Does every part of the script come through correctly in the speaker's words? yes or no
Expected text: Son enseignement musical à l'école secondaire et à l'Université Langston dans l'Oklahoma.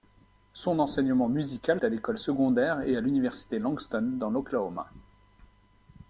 yes